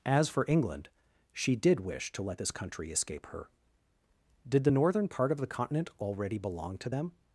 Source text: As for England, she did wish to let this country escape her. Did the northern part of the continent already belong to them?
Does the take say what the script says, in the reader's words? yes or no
yes